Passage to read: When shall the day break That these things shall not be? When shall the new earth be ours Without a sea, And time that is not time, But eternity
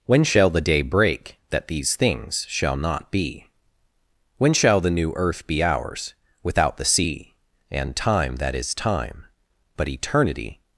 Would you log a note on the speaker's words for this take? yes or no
yes